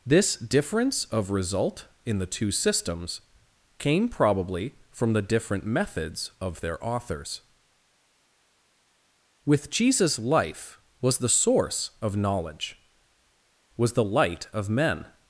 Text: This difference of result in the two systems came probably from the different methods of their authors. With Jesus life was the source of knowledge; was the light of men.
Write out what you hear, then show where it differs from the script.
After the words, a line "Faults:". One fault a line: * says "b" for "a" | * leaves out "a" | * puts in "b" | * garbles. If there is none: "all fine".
This difference of result in the two systems came probably from the different methods of their authors. With Jesus life was the source of knowledge; was the light of men.
Faults:
all fine